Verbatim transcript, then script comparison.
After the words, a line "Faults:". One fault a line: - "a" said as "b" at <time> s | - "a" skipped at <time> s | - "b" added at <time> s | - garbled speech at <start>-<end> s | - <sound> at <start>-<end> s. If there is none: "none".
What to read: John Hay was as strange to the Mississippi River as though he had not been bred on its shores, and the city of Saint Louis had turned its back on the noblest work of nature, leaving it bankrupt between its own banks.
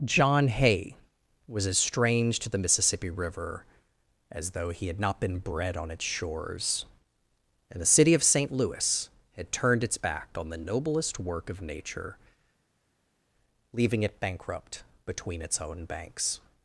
John Hay was as strange to the Mississippi River as though he had not been bred on its shores, and the city of Saint Louis had turned its back on the noblest work of nature, leaving it bankrupt between its own banks.
Faults:
none